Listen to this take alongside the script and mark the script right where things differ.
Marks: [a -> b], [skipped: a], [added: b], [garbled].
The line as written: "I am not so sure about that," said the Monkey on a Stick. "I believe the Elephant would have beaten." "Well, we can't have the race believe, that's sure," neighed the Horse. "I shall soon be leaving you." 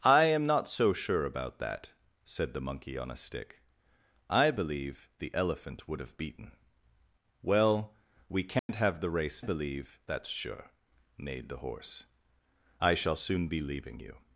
"I am not so sure about that," said the Monkey on a Stick. "I believe the Elephant would have beaten." "Well, we can't have the race believe, that's sure," neighed the Horse. "I shall soon be leaving you."